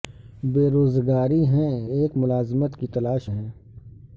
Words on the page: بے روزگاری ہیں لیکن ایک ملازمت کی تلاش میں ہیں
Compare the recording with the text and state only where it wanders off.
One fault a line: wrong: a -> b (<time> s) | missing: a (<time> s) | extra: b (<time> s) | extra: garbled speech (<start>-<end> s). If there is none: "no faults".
missing: لیکن (1.9 s)
missing: میں (3.3 s)